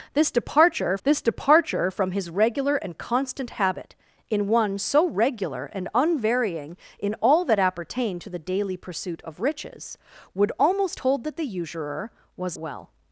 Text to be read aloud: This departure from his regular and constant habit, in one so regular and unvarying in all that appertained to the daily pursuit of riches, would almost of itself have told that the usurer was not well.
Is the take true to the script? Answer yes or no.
no